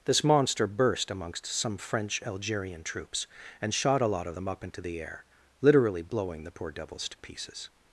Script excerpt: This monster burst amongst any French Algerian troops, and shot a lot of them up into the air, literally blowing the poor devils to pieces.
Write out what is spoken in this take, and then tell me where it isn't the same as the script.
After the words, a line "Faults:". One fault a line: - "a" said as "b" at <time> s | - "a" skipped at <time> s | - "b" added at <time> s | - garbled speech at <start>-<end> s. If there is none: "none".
This monster burst amongst some French Algerian troops, and shot a lot of them up into the air, literally blowing the poor devils to pieces.
Faults:
- "any" said as "some" at 1.4 s